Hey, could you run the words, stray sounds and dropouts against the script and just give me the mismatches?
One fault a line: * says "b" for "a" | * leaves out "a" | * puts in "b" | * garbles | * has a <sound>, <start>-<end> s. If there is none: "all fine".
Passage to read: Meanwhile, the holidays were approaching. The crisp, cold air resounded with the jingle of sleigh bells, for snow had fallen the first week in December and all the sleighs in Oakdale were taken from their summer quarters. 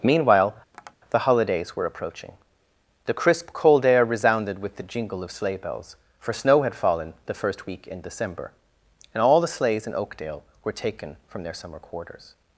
* has a tap, 0.7-1.0 s